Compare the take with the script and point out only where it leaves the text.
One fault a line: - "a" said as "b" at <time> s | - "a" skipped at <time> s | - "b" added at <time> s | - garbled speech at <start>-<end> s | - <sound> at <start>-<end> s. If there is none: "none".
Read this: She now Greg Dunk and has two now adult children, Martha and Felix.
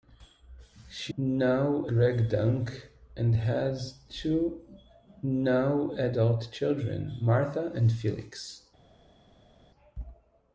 none